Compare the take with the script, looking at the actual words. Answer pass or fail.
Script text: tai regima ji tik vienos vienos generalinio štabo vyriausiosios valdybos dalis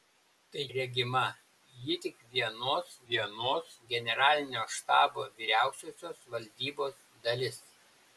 pass